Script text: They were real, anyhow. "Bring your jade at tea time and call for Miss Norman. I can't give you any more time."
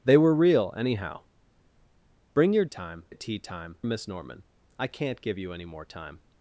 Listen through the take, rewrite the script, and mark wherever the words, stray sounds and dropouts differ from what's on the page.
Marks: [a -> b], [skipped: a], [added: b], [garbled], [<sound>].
They were real, anyhow. "Bring your [jade -> time] at tea time [skipped: and call for] Miss Norman. I can't give you any more time."